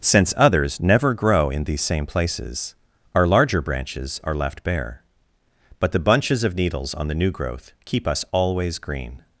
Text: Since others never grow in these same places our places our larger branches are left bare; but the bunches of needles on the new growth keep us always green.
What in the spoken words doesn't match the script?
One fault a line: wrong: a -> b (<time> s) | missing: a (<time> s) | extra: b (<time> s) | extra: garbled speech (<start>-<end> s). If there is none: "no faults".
missing: places our (3.3 s)